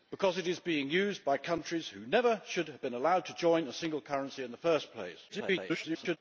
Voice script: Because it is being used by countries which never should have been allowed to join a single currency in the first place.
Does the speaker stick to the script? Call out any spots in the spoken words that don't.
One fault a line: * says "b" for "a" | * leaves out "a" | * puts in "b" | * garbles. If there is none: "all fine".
* garbles